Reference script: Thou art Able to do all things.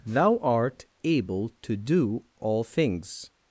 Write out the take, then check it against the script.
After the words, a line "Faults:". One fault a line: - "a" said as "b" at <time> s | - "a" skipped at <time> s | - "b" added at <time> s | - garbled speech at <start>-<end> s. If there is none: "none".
Thou art Able to do all things.
Faults:
none